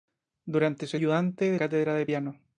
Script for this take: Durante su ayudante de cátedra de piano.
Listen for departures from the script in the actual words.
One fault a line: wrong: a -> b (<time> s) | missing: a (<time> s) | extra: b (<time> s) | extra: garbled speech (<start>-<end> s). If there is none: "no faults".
no faults